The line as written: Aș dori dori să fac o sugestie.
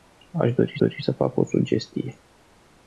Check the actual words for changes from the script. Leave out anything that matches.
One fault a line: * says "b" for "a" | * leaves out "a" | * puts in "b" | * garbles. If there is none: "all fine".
all fine